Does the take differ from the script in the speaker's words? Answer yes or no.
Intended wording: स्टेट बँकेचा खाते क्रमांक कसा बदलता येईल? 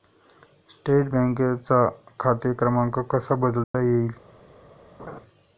no